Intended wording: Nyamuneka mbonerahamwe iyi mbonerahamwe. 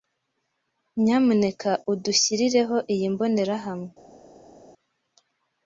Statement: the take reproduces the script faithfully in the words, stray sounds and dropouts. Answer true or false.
false